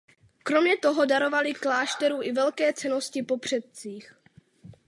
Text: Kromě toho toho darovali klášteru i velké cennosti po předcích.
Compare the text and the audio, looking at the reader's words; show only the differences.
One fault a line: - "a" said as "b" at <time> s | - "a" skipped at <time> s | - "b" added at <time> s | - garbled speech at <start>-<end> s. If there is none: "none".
- "toho" skipped at 1.1 s